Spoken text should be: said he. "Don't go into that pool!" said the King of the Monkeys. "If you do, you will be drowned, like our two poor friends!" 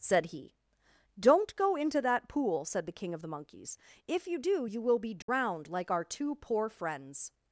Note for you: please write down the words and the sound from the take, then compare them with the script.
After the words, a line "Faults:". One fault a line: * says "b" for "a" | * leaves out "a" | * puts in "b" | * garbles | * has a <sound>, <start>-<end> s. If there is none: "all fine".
said he. "Don't go into that pool!" said the King of the Monkeys. "If you do, you will be drowned, like our two poor friends!"
Faults:
* has a dropout, 5.2-5.3 s